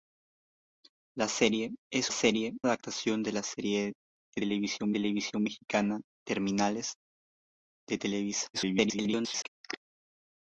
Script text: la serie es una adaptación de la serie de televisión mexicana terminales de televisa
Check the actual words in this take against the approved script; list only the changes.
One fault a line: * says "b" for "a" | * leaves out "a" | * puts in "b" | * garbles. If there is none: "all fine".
* says "serie" for "una"
* puts in "televisión"
* garbles